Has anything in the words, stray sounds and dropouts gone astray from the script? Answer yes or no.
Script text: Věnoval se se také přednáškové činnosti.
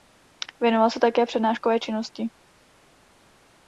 yes